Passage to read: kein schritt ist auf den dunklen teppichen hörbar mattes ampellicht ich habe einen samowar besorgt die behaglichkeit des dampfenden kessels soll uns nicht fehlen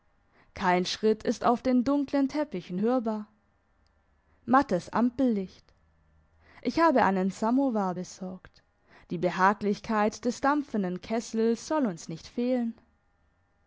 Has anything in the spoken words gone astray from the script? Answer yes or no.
no